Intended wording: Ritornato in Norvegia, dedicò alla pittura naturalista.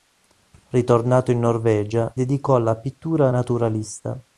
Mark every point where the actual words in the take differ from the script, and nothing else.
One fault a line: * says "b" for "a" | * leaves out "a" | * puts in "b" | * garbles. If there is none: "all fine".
all fine